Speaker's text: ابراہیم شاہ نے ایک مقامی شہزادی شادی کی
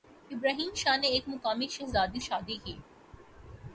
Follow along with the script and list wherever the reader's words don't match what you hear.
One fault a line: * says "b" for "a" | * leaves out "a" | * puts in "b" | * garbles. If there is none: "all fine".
all fine